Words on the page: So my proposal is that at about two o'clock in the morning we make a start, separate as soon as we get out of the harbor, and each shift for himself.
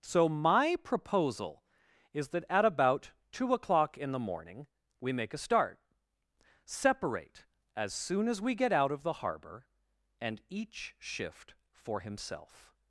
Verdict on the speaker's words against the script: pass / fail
pass